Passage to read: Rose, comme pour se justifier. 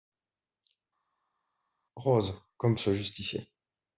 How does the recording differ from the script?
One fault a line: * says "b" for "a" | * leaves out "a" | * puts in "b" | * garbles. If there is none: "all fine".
* leaves out "pour"